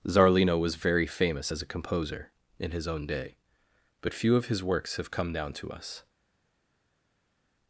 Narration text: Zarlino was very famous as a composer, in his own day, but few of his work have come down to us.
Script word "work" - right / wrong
wrong